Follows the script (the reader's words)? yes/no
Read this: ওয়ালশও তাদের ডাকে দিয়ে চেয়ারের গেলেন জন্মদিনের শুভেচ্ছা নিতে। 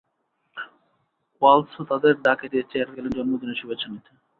yes